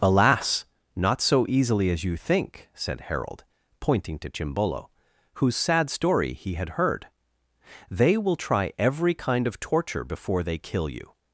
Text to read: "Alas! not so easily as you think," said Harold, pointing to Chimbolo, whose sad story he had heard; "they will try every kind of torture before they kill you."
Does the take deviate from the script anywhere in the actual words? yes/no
no